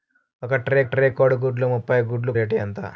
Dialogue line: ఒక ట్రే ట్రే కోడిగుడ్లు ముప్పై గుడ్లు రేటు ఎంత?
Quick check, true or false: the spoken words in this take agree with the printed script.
true